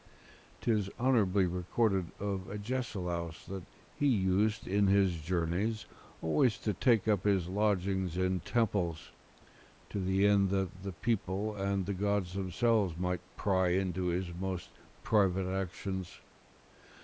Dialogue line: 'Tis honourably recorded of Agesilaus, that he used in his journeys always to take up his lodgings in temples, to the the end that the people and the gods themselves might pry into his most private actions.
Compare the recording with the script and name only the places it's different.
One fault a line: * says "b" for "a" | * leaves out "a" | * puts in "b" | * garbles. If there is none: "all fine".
* leaves out "the"